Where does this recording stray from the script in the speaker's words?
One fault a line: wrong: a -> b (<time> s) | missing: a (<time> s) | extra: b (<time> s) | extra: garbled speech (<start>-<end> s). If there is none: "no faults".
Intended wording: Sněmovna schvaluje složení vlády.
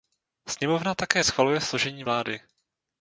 extra: také (0.9 s)